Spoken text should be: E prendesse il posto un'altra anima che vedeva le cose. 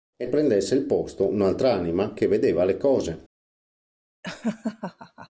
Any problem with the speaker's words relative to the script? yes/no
no